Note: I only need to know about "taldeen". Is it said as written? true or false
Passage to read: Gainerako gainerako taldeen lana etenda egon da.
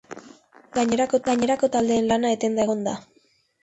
true